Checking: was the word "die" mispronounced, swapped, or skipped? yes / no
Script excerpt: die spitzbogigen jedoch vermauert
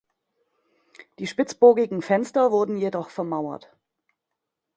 no